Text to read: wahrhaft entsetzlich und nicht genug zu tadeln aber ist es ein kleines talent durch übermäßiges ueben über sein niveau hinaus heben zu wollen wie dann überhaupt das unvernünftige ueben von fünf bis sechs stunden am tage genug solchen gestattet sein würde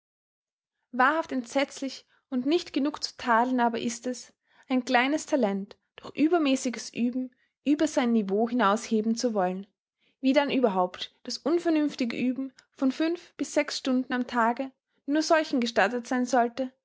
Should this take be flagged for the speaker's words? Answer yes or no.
yes